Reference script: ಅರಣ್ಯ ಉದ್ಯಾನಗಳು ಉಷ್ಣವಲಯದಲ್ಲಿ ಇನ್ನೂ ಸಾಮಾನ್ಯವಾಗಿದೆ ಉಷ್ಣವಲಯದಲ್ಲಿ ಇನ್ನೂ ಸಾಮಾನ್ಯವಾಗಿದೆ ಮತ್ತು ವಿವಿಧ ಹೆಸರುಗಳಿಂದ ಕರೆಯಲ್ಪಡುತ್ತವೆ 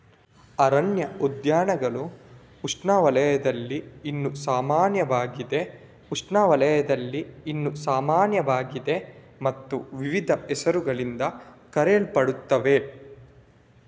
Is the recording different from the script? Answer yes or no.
no